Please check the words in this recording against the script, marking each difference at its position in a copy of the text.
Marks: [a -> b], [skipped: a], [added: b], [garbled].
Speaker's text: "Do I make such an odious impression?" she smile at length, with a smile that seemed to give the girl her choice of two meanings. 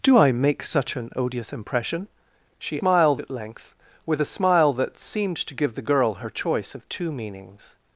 "Do I make such an odious impression?" she smile at length, with a smile that seemed to give the girl her choice of two meanings.